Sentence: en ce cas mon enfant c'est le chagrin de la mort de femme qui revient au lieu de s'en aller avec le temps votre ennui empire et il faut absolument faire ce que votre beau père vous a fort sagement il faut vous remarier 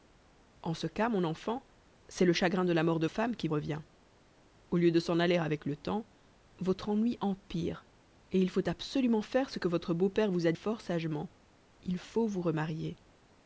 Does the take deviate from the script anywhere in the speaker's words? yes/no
no